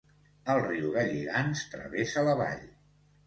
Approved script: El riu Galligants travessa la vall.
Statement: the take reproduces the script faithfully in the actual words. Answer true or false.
true